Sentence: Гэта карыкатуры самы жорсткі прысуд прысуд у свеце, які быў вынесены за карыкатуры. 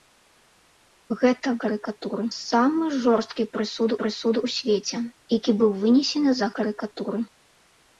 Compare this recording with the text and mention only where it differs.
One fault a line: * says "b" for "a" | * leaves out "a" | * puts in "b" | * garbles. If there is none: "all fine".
all fine